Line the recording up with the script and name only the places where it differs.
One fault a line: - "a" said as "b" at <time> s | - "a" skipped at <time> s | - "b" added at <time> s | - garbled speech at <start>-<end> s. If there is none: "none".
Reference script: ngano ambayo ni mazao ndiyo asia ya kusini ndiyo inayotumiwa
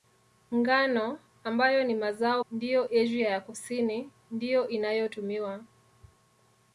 none